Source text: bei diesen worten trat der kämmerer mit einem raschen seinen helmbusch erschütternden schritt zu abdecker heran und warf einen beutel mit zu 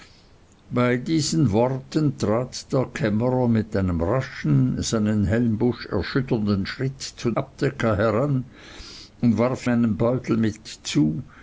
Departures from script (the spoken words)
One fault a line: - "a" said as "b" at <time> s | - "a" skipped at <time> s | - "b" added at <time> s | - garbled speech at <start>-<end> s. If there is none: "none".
none